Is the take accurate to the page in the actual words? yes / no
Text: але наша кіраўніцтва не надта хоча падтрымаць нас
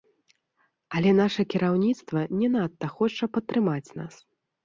yes